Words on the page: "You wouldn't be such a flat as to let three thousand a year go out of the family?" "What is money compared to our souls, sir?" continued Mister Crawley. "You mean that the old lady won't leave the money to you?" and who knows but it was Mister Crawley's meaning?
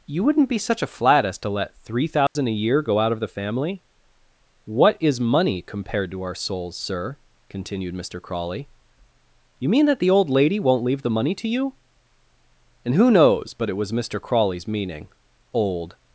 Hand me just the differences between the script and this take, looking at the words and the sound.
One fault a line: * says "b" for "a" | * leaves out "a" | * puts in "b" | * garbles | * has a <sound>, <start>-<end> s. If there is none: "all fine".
* has a dropout, 2.3-2.4 s
* puts in "Old"